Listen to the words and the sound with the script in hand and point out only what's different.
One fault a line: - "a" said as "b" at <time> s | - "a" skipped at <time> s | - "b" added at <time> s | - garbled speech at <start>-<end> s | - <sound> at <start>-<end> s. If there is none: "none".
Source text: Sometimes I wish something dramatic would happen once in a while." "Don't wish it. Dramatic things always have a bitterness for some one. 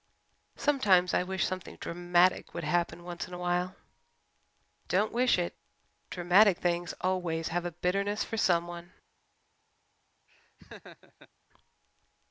- laugh at 10.3-11.3 s